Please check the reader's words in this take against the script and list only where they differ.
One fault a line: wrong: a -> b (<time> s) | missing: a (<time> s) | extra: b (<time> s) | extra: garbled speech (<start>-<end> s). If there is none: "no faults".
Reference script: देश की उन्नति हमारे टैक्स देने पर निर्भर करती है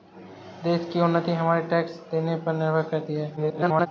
extra: garbled speech (3.4-3.9 s)